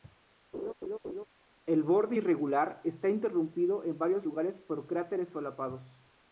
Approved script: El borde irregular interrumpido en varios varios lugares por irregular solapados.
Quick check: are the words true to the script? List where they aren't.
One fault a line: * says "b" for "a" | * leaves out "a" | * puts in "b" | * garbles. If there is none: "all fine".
* puts in "está"
* leaves out "varios"
* says "cráteres" for "irregular"